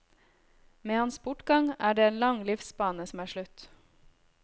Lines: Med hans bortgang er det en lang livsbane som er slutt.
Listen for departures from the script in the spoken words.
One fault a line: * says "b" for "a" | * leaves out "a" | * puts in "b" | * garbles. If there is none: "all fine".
all fine